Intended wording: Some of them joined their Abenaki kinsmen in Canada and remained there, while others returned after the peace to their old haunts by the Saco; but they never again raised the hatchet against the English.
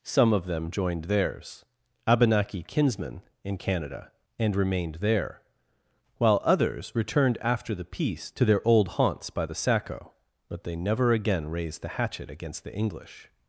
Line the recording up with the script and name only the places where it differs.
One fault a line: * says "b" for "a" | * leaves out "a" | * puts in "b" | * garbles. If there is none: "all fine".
* says "theirs" for "their"